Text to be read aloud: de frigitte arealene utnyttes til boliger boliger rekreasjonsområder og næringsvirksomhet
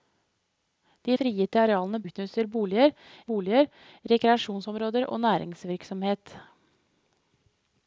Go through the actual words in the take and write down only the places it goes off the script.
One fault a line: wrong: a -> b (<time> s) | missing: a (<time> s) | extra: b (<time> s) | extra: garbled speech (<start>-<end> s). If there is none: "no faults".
no faults